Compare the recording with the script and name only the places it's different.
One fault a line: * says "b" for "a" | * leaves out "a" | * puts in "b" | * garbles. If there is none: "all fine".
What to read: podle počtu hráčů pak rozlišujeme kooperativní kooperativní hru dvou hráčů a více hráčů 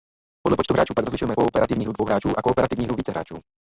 * leaves out "kooperativní"
* puts in "kooperativní hru"